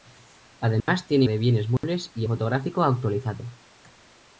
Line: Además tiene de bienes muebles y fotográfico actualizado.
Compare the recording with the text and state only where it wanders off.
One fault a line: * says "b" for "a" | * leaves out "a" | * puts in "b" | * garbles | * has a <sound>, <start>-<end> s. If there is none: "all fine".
* has a dropout, 0.8-0.9 s
* has a dropout, 1.8-1.8 s